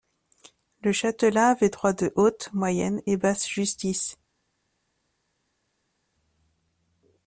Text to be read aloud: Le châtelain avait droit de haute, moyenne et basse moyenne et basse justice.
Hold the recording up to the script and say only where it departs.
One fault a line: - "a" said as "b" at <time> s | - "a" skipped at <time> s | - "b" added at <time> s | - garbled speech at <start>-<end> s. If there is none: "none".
- "moyenne et basse" skipped at 3.5 s